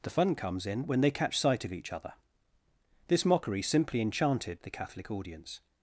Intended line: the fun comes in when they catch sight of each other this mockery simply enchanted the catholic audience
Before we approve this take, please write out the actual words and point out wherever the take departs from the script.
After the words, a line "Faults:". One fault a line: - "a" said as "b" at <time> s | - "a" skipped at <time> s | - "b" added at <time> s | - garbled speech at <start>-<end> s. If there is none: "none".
the fun comes in when they catch sight of each other this mockery simply enchanted the catholic audience
Faults:
none